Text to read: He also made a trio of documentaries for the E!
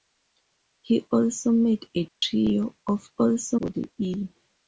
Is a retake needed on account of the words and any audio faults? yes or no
yes